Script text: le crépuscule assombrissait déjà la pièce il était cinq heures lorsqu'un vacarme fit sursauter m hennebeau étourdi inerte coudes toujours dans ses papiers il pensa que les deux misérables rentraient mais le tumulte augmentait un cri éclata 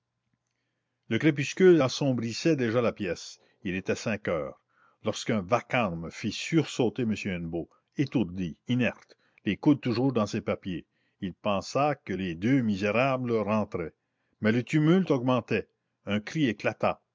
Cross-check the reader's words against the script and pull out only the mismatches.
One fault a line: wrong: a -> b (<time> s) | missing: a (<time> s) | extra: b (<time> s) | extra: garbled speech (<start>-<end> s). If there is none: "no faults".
extra: les (9.4 s)